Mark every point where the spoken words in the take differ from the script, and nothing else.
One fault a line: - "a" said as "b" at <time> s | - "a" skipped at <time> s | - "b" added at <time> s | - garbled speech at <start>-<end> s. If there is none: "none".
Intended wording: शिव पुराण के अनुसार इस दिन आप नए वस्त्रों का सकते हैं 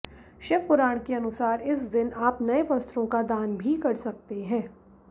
- "दान भी कर" added at 3.3 s